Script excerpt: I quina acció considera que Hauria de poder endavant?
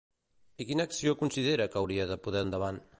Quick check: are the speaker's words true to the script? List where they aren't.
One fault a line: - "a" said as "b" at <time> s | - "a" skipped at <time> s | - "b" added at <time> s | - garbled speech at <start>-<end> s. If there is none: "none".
none